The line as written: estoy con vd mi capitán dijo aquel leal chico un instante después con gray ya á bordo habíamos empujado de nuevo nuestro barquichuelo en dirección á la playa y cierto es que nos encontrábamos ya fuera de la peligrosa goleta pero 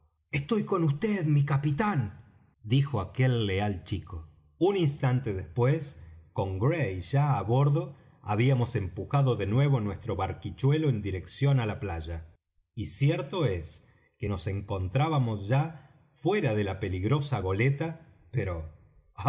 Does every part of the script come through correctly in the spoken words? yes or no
yes